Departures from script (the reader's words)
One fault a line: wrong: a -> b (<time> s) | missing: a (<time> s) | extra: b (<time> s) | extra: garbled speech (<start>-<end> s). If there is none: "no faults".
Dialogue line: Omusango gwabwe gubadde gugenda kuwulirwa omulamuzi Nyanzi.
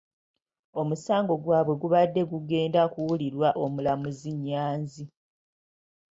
no faults